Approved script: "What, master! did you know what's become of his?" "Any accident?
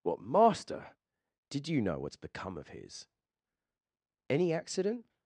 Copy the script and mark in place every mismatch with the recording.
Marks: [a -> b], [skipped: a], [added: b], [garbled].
"What, master! did you know what's become of his?" "Any accident?